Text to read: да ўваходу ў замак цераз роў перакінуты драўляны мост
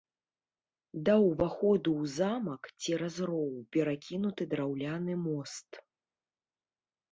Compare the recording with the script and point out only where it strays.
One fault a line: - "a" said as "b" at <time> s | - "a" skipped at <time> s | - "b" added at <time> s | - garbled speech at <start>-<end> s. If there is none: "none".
none